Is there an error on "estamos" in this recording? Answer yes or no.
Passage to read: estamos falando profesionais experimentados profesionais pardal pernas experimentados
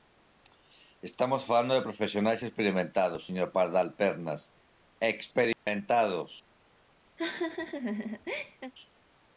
no